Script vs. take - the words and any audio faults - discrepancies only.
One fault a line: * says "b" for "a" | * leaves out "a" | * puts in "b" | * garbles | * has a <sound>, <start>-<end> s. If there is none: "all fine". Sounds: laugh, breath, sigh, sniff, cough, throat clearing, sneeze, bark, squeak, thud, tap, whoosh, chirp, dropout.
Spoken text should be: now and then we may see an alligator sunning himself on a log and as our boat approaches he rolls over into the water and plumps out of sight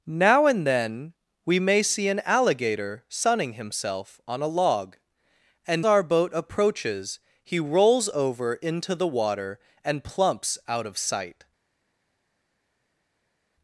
* leaves out "as"